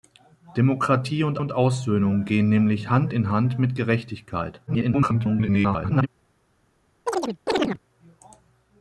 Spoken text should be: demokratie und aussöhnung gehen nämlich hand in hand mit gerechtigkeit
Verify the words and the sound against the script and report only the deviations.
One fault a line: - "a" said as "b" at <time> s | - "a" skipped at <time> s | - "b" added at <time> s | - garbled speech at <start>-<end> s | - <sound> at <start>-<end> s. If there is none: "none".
- "und" added at 1.4 s
- garbled speech at 4.7-6.1 s
- chirp at 7.1-7.8 s